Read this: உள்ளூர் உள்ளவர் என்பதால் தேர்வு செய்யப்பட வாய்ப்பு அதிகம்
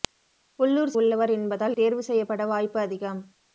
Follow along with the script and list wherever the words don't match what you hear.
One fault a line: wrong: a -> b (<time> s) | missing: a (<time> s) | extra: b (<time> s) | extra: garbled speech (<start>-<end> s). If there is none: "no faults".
no faults